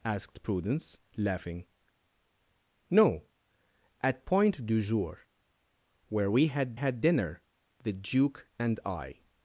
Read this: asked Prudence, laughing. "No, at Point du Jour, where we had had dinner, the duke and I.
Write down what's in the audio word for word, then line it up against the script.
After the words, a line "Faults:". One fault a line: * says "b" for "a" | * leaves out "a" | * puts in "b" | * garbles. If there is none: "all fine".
asked Prudence, laughing. "No, at Point du Jour, where we had had dinner, the duke and I.
Faults:
all fine